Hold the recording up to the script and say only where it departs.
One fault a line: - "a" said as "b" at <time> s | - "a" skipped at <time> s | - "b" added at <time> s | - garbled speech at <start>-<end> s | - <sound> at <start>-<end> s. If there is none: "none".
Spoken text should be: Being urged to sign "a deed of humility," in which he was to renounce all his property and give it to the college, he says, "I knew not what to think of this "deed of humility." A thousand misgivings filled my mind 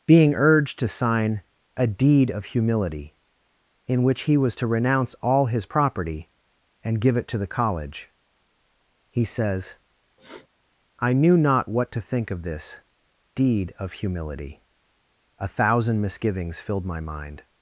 - sniff at 10.2-10.5 s